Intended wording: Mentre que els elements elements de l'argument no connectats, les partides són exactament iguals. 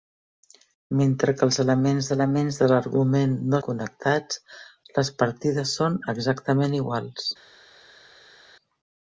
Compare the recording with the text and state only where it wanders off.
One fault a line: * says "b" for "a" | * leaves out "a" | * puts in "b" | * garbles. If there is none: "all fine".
all fine